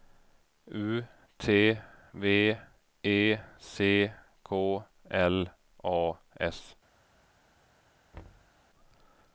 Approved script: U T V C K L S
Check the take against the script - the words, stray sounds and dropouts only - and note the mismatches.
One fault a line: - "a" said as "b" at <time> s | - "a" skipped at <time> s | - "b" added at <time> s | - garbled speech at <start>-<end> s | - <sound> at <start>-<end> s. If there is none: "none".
- "E" added at 3.0 s
- "A" added at 5.8 s
- thud at 8.1-8.5 s